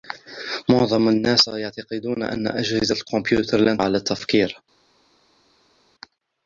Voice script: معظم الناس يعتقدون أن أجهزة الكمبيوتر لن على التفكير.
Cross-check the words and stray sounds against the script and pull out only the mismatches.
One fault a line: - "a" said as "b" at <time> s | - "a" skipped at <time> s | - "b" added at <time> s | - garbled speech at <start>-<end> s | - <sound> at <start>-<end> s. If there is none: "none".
none